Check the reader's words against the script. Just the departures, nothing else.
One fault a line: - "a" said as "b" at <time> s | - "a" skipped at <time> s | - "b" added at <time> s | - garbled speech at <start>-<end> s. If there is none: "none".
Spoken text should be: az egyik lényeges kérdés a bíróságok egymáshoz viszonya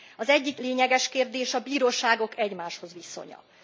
none